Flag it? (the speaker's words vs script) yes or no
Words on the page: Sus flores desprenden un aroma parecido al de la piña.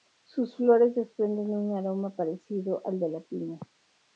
no